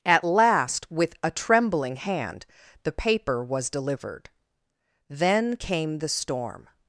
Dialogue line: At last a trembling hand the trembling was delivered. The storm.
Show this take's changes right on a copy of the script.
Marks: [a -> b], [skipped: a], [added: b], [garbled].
At last [added: with] a trembling hand the [trembling -> paper] was delivered. [added: Then came] The storm.